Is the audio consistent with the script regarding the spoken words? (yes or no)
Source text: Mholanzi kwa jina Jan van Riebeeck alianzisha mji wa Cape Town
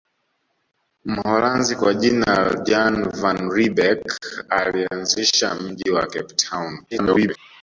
no